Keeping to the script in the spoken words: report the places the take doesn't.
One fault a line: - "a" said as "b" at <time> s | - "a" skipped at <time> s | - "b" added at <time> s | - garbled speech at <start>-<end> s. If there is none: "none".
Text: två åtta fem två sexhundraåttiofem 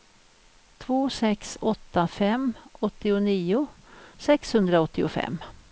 - "sex" added at 1.1 s
- "två" said as "åttionio" at 2.8 s